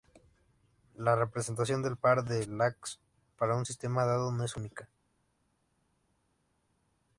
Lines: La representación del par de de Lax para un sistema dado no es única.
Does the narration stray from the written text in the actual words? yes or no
yes